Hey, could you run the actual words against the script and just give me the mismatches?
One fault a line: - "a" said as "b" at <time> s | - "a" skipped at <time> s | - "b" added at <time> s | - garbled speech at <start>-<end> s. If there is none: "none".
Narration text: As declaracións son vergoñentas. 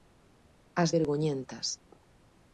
- "declaracións son" skipped at 0.9 s